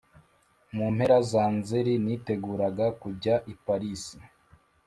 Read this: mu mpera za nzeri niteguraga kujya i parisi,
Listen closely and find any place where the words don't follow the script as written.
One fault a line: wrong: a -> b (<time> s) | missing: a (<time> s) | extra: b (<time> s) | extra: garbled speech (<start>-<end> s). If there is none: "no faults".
no faults